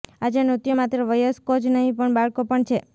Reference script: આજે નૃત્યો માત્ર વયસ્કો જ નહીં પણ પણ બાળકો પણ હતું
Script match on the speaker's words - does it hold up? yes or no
no